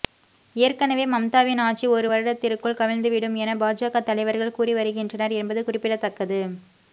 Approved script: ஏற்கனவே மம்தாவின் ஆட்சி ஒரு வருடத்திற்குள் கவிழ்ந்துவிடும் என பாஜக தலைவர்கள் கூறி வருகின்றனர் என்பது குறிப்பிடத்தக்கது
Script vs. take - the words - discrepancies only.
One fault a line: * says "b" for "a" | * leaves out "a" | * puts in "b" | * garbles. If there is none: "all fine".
all fine